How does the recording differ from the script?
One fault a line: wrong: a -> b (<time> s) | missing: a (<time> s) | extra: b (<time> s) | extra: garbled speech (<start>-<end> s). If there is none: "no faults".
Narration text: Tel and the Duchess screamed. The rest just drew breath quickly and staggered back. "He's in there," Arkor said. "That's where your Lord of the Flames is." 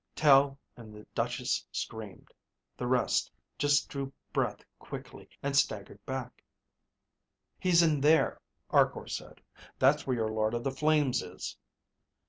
no faults